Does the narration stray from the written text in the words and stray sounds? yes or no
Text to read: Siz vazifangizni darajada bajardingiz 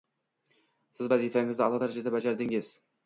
yes